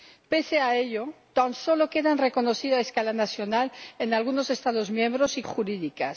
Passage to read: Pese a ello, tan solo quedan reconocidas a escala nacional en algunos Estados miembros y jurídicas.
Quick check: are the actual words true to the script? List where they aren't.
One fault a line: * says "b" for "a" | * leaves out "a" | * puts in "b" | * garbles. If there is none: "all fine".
all fine